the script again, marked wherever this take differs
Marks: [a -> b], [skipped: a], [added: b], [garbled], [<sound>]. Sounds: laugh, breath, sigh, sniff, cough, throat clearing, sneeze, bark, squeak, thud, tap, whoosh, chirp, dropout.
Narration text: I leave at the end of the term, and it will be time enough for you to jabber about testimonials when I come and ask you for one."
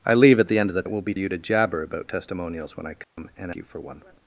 I leave at the end of the [skipped: term, and] it will be [skipped: time enough for] you to jabber about testimonials when I come [dropout] and [skipped: ask] you for one."